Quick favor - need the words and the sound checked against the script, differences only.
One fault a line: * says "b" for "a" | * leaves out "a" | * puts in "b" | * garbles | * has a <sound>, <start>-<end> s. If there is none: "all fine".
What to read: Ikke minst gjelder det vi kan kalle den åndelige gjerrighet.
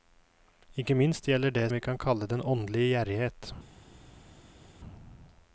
all fine